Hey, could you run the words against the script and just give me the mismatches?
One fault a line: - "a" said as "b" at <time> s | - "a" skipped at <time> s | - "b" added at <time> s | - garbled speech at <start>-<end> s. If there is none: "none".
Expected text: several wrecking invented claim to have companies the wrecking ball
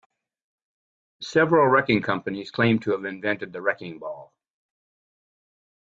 - "invented" said as "companies" at 2.0 s
- "companies" said as "invented" at 3.0 s